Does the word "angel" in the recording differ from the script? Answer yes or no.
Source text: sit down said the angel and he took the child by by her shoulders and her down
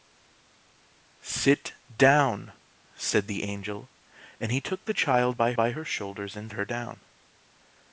no